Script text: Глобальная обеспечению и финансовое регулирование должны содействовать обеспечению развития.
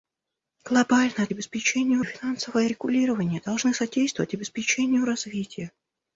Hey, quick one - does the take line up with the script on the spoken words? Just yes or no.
yes